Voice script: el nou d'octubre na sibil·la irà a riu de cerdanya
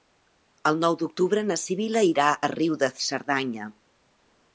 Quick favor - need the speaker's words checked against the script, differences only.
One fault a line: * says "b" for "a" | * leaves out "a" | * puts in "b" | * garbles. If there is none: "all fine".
all fine